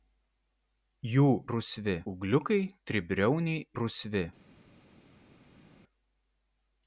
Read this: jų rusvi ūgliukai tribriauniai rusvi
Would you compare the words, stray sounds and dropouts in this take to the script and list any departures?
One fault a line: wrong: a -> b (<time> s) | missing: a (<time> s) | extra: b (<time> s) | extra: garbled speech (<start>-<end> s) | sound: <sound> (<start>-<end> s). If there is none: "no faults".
no faults